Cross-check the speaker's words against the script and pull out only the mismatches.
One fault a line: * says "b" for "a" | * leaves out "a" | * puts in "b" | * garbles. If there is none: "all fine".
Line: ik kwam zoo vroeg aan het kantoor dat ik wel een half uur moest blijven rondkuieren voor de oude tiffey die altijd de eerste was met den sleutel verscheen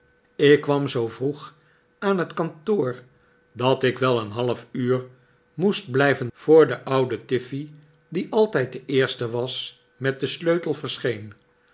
* leaves out "rondkuieren"